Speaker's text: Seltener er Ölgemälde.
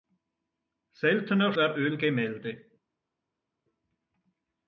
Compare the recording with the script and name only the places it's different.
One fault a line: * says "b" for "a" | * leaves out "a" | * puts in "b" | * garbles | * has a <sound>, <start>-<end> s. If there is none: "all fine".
all fine